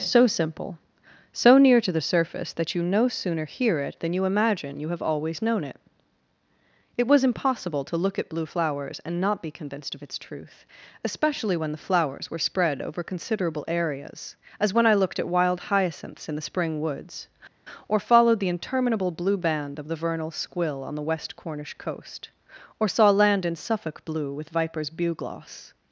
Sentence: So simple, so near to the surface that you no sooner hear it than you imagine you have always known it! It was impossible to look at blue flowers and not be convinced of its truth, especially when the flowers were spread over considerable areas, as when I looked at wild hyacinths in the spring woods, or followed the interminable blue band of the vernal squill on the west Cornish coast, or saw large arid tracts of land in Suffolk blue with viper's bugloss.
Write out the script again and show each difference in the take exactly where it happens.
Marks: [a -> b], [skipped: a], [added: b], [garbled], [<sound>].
So simple, so near to the surface that you no sooner hear it than you imagine you have always known it! It was impossible to look at blue flowers and not be convinced of its truth, especially when the flowers were spread over considerable areas, as when I looked at wild hyacinths in the spring woods, or followed the interminable blue band of the vernal squill on the west Cornish coast, or saw [skipped: large arid tracts of] land in Suffolk blue with viper's bugloss.